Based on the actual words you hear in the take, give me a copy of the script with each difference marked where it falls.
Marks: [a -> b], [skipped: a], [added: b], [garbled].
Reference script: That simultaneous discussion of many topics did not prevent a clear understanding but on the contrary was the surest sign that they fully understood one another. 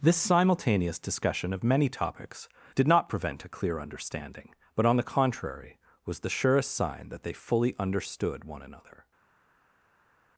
[That -> This] simultaneous discussion of many topics did not prevent a clear understanding but on the contrary was the surest sign that they fully understood one another.